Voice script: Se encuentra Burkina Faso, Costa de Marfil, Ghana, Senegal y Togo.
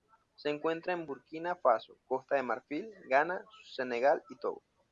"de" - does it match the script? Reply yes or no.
yes